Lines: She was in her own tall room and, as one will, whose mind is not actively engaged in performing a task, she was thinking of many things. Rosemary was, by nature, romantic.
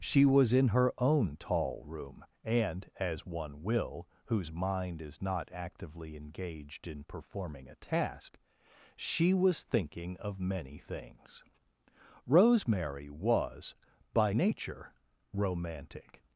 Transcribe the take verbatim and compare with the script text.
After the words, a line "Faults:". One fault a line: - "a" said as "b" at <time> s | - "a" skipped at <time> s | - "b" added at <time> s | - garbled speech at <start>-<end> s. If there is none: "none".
She was in her own tall room and, as one will, whose mind is not actively engaged in performing a task, she was thinking of many things. Rosemary was, by nature, romantic.
Faults:
none